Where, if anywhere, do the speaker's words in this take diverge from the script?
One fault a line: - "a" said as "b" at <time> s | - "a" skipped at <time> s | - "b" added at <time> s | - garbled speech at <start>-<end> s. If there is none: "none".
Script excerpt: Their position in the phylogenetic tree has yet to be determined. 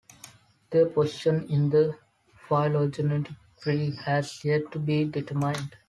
none